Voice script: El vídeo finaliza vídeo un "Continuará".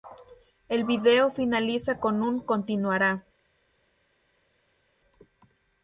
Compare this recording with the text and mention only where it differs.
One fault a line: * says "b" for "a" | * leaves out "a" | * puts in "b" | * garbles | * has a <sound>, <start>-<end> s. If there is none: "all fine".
* says "con" for "vídeo"